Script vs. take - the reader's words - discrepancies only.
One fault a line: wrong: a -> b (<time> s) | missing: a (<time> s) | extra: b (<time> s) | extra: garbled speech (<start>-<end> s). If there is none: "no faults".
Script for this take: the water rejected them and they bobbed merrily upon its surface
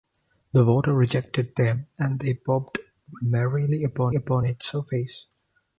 extra: upon (4.1 s)